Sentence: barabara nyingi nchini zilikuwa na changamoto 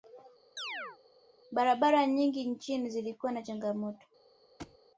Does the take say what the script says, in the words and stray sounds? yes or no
no